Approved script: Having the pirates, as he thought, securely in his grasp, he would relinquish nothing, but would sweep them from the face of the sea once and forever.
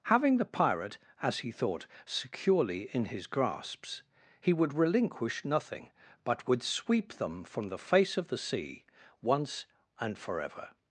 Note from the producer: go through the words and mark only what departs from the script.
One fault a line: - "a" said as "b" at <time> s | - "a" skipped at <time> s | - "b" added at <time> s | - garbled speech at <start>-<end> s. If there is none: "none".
- "pirates" said as "pirate" at 0.5 s
- "grasp" said as "grasps" at 3.3 s